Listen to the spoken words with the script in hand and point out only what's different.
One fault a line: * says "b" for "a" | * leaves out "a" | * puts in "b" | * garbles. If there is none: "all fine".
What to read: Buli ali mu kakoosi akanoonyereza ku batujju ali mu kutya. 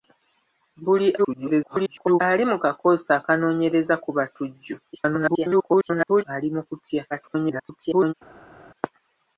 * garbles
* garbles
* garbles